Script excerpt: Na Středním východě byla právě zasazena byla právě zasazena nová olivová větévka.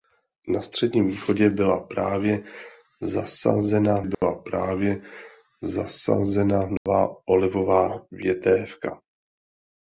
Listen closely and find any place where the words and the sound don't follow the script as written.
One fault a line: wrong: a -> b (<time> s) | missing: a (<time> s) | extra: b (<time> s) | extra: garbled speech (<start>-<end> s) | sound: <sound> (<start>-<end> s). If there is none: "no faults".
sound: dropout (4.1-4.2 s)
sound: dropout (6.8-6.9 s)